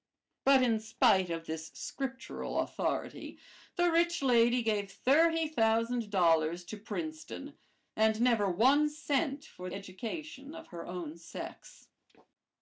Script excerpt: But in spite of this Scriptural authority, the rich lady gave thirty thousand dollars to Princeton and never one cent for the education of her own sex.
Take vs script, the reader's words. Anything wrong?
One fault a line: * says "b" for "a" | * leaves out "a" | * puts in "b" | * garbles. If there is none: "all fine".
* leaves out "the"